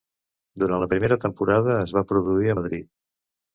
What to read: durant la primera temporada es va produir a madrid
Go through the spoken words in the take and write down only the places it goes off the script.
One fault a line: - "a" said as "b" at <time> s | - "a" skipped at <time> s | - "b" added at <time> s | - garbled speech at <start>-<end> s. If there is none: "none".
none